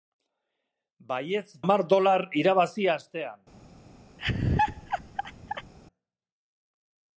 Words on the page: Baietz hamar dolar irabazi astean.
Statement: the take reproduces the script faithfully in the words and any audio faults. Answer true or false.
false